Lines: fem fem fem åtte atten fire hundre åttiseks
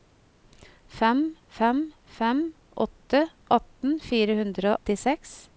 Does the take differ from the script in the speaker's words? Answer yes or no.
no